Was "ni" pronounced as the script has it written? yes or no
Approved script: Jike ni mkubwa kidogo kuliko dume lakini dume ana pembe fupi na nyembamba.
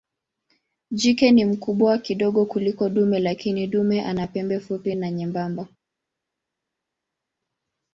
yes